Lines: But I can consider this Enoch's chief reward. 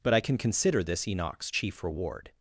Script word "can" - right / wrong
right